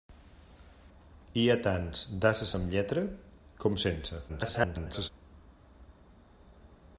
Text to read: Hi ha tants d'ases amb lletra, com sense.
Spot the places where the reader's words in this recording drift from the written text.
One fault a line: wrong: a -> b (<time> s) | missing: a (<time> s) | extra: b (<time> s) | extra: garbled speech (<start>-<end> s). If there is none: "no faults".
extra: garbled speech (4.3-5.1 s)